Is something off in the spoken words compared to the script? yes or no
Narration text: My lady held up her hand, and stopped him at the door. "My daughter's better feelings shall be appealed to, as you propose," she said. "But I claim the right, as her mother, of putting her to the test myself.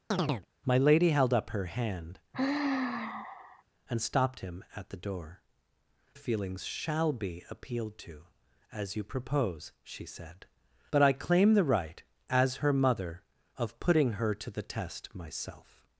yes